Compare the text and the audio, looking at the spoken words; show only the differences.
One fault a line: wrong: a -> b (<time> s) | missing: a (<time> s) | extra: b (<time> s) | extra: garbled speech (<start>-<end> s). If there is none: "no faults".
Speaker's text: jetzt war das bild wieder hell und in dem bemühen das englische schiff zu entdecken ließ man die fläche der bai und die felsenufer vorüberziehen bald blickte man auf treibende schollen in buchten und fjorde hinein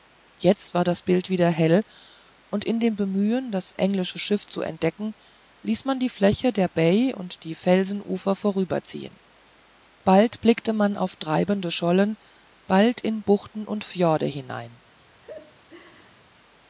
extra: bald (12.7 s)